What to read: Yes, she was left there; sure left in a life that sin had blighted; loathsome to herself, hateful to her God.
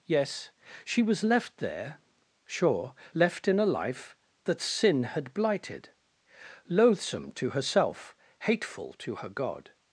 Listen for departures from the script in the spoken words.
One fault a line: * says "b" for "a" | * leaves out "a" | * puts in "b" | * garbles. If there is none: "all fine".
all fine